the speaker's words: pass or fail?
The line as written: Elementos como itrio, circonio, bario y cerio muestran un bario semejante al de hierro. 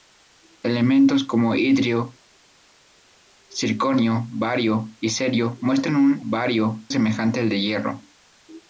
pass